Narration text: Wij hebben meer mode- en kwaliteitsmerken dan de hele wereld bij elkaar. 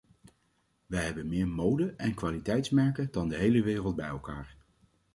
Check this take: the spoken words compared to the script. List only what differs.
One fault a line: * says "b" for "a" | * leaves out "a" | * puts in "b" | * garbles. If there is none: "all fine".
all fine